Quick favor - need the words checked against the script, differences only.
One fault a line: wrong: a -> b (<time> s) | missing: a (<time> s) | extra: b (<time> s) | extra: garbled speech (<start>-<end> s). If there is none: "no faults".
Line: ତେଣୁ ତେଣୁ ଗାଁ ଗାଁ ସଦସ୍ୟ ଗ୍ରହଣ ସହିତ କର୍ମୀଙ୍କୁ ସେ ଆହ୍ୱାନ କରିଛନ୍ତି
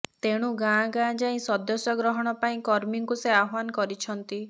wrong: ତେଣୁ -> ଗାଁ (0.6 s)
wrong: ଗାଁ -> ଯାଇ (1.2 s)
wrong: ସହିତ -> ପାଇଁ (2.4 s)